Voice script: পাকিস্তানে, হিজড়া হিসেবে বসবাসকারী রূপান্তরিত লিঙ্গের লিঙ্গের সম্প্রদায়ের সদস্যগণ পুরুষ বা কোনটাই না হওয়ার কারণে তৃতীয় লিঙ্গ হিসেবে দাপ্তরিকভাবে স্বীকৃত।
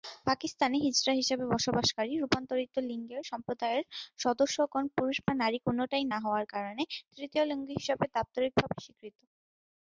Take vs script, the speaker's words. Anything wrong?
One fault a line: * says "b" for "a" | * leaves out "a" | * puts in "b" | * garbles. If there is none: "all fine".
* leaves out "লিঙ্গের"
* puts in "নারী"